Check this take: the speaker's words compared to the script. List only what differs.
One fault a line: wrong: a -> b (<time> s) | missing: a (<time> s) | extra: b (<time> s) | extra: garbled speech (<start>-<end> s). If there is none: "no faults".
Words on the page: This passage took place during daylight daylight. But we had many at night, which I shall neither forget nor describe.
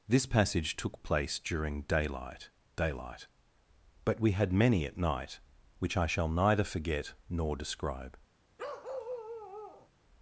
no faults